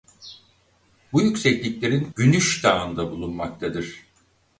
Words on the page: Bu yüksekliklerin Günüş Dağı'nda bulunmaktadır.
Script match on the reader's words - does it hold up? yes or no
yes